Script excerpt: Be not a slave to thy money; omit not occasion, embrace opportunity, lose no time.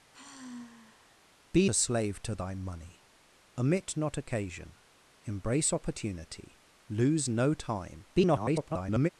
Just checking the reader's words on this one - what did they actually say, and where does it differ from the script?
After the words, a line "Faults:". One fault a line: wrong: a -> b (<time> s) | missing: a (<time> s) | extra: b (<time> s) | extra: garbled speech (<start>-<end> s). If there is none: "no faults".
Be a slave to thy money; omit not occasion, embrace opportunity, lose no time. [garbled]
Faults:
missing: not (1.7 s)
extra: garbled speech (8.1-9.1 s)